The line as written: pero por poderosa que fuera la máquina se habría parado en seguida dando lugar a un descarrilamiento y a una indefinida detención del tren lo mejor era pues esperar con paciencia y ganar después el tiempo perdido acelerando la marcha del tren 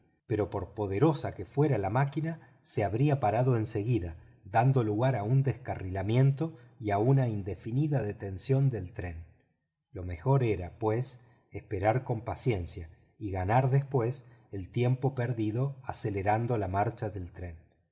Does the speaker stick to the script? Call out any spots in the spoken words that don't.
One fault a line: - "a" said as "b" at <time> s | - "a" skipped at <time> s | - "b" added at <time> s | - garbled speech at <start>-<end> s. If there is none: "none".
none